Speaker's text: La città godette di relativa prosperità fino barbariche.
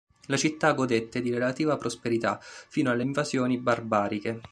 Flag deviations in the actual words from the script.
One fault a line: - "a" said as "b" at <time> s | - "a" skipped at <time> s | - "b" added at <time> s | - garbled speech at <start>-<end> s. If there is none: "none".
- "alle invasioni" added at 2.9 s